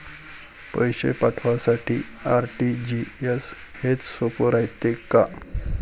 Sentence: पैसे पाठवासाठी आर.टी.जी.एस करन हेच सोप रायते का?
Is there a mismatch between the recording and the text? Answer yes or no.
yes